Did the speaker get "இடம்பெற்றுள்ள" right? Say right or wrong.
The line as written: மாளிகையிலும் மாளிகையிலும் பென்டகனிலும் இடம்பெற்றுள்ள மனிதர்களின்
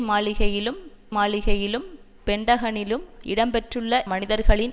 right